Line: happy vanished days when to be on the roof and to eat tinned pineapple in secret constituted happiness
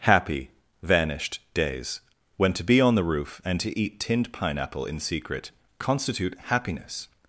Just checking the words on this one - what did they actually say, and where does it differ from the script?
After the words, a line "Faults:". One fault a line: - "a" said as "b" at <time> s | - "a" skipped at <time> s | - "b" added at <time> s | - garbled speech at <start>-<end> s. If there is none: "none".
happy vanished days when to be on the roof and to eat tinned pineapple in secret constitute happiness
Faults:
- "constituted" said as "constitute" at 5.8 s